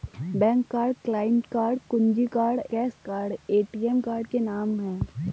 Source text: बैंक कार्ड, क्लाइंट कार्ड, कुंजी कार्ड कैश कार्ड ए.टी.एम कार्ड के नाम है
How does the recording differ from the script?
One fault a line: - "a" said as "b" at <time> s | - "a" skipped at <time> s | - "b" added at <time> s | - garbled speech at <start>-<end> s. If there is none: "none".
none